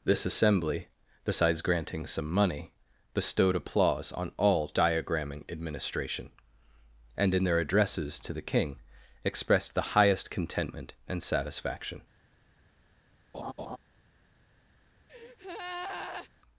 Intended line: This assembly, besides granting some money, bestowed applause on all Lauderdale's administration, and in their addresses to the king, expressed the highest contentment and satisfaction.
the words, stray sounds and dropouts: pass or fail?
fail